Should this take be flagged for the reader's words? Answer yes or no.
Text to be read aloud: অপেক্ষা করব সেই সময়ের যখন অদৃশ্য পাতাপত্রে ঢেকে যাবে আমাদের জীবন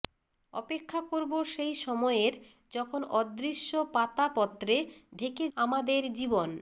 yes